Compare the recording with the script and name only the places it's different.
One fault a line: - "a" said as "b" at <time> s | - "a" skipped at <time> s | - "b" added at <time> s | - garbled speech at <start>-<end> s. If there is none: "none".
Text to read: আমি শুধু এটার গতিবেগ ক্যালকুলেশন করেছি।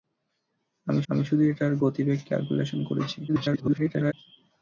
- "আমি" added at 1.1 s
- garbled speech at 3.3-4.1 s